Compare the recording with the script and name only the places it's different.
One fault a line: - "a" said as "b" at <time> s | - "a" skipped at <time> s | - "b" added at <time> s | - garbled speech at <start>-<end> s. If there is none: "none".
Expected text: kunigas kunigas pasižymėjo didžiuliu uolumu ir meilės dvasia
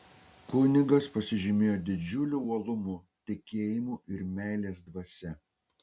- "kunigas" skipped at 1.1 s
- "tikėjimu" added at 3.3 s